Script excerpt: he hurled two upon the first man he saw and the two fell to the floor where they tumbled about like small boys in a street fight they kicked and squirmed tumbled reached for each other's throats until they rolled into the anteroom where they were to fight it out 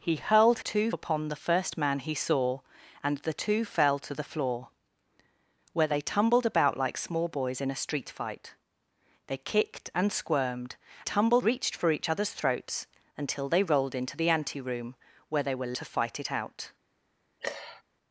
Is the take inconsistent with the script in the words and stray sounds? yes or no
yes